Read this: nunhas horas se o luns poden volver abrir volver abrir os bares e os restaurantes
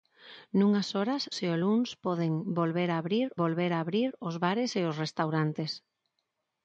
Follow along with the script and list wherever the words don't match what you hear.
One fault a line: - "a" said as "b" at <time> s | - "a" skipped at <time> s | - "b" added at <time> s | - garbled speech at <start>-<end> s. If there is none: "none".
none